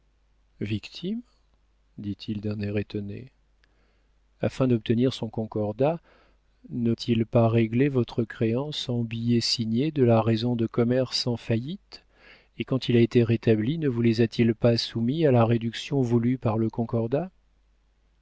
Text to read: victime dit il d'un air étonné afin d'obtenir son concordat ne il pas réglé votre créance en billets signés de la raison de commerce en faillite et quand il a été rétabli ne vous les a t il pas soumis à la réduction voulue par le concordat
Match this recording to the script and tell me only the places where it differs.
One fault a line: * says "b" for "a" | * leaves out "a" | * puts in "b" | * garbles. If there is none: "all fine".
all fine